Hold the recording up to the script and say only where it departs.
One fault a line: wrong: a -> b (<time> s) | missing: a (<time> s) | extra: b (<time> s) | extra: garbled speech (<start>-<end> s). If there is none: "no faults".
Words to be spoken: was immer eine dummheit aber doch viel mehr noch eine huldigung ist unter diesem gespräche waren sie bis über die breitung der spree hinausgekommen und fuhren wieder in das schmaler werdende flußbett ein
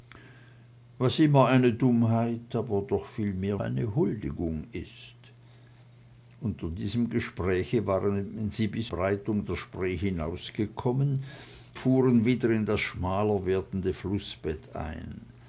missing: noch (3.6 s)
missing: über die (8.9 s)
missing: und (11.2 s)